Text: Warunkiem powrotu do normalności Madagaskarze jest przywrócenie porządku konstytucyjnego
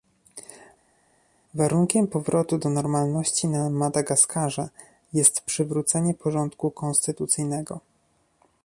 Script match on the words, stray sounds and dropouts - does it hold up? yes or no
no